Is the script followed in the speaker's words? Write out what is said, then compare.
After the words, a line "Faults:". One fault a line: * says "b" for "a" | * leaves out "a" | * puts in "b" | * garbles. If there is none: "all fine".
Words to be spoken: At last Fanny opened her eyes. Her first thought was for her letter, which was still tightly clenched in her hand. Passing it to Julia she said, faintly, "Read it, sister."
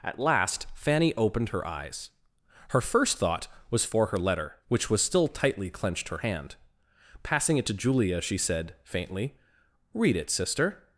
At last Fanny opened her eyes. Her first thought was for her letter, which was still tightly clenched her hand. Passing it to Julia she said, faintly, "Read it, sister."
Faults:
* leaves out "in"